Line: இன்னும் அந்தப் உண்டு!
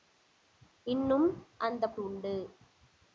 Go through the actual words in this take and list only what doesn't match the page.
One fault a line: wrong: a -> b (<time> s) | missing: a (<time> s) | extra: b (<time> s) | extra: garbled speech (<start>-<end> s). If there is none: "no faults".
no faults